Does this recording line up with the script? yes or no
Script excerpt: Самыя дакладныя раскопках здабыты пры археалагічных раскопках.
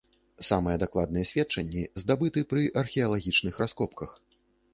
no